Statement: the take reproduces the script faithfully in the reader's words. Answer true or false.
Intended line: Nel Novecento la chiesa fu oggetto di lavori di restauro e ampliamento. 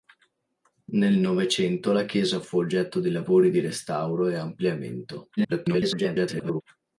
false